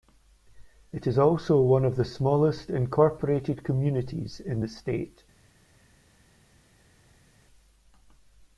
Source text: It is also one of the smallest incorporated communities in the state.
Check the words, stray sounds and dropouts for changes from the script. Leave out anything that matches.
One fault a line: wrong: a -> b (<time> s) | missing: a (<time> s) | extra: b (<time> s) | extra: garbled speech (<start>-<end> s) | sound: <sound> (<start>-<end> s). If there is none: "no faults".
no faults